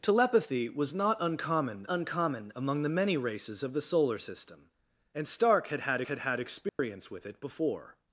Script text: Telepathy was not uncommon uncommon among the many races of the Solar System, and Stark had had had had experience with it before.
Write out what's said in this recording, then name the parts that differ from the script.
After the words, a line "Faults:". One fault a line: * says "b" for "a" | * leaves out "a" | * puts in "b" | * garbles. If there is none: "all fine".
Telepathy was not uncommon uncommon among the many races of the Solar System, and Stark had had had had experience with it before.
Faults:
all fine